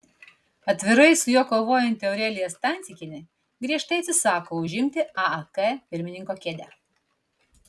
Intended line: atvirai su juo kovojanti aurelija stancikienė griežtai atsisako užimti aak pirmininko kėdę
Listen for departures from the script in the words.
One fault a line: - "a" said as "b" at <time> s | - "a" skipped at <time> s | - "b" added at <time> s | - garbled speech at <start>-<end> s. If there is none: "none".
none